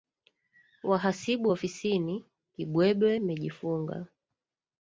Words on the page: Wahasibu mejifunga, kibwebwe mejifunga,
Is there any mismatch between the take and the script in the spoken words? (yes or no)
yes